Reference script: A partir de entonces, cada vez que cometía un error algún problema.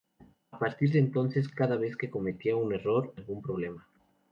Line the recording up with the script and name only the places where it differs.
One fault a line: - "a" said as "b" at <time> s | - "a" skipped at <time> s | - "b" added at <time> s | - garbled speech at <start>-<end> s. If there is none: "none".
none